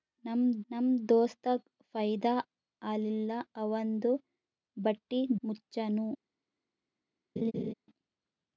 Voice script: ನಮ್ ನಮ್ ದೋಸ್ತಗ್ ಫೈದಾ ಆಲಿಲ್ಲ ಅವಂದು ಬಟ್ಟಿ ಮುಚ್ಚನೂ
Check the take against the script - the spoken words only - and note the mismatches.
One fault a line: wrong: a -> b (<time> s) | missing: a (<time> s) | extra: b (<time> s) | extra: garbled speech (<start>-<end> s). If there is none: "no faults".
no faults